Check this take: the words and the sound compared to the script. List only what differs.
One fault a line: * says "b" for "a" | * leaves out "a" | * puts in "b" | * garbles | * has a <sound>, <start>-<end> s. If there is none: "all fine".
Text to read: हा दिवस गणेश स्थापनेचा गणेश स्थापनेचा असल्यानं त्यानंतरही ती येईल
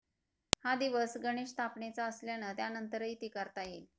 * leaves out "गणेश स्थापनेचा"
* puts in "करता"